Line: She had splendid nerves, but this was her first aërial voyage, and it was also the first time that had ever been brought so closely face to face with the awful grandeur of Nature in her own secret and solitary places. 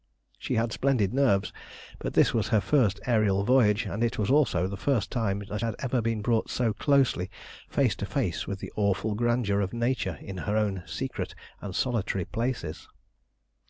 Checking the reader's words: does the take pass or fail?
pass